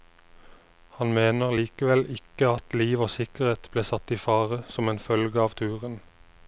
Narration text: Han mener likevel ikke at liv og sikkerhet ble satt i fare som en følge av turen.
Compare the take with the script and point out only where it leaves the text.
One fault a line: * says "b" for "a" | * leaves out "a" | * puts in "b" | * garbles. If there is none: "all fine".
all fine